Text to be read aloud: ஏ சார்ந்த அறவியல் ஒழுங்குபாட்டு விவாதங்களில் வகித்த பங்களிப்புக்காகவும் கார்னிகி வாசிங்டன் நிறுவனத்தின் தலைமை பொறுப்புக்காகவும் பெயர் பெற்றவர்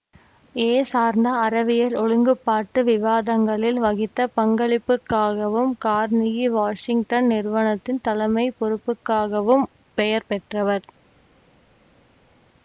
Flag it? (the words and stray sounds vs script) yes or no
no